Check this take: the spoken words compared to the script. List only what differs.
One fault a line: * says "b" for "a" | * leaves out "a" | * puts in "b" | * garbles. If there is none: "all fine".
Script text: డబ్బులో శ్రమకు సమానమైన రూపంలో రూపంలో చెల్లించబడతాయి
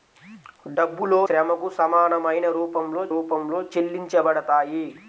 all fine